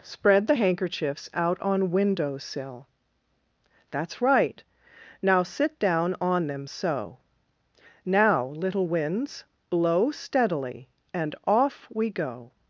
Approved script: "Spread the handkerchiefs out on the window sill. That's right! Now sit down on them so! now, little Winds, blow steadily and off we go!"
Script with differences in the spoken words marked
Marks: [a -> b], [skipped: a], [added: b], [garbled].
"Spread the handkerchiefs out on [skipped: the] window sill. That's right! Now sit down on them so! now, little Winds, blow steadily and off we go!"